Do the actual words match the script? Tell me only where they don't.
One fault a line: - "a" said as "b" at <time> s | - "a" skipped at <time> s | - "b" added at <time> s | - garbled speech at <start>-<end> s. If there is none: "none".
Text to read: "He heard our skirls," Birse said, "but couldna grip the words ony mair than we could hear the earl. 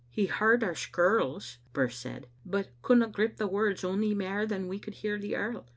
none